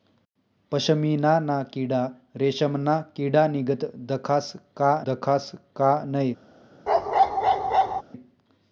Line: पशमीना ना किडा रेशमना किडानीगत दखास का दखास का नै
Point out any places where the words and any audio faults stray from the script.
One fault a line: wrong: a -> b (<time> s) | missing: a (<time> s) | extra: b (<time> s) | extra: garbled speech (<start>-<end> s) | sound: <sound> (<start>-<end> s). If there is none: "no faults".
sound: bark (6.9-8.0 s)